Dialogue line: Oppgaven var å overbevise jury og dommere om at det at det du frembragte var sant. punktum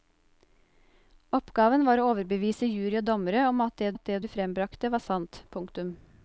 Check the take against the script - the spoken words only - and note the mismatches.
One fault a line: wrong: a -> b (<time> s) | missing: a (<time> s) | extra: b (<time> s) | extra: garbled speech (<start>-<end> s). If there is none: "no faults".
no faults